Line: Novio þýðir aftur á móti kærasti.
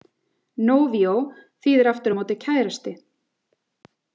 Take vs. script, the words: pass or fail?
pass